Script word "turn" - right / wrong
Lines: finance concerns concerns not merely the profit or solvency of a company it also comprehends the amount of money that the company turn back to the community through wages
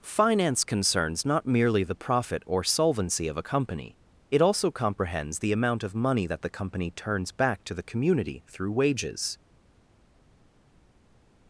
wrong